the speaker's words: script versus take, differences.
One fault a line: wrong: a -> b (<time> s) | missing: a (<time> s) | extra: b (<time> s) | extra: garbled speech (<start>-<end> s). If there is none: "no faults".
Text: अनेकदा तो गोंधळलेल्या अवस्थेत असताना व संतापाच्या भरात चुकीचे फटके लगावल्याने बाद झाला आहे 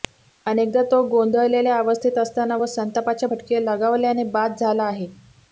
missing: भरात चुकीचे (3.3 s)